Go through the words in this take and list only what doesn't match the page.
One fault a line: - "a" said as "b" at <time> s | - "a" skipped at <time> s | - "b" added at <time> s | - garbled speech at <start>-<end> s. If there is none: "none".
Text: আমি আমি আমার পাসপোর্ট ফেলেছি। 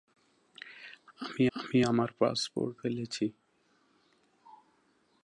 none